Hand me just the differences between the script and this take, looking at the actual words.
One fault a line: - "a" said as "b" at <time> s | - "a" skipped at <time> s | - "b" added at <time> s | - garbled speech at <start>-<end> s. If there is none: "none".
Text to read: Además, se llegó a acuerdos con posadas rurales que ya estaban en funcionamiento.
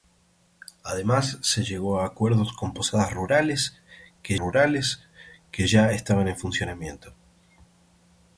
- "rurales que" added at 4.4 s